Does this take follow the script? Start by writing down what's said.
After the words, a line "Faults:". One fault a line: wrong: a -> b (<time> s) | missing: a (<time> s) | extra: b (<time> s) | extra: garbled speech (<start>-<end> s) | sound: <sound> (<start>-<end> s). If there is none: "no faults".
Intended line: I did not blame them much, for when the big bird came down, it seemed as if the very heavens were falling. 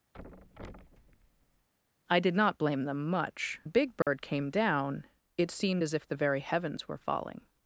I did not blame them much, the big bird came down, it seemed as if the very heavens were falling.
Faults:
sound: thud (0.1-1.7 s)
missing: for when (3.6 s)
sound: dropout (4.0-4.1 s)